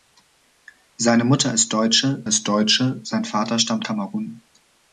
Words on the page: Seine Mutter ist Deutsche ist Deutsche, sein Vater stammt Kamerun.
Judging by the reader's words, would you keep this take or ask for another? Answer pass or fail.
pass